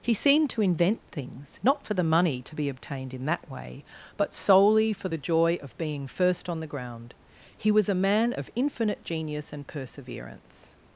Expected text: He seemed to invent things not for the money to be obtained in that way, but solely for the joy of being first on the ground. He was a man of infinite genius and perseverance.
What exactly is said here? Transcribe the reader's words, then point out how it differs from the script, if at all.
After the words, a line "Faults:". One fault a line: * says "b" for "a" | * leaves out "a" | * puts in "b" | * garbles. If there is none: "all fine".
He seemed to invent things not for the money to be obtained in that way, but solely for the joy of being first on the ground. He was a man of infinite genius and perseverance.
Faults:
all fine